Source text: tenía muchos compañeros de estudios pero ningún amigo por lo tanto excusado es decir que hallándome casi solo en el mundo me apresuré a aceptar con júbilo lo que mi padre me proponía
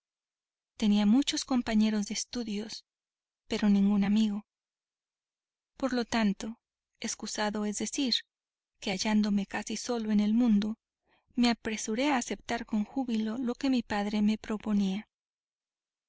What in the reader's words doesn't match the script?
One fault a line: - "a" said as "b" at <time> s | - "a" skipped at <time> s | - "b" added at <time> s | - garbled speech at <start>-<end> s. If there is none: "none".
none